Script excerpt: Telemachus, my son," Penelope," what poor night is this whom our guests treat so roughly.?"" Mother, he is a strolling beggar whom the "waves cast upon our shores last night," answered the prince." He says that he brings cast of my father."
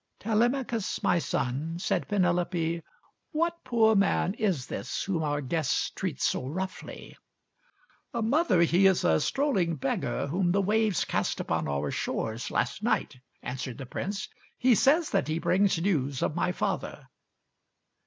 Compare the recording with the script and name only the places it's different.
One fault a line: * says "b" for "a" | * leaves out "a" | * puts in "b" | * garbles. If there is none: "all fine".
* puts in "said"
* says "man" for "night"
* says "news" for "cast"